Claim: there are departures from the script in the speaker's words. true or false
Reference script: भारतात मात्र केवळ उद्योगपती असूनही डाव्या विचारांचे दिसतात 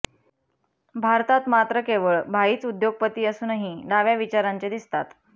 true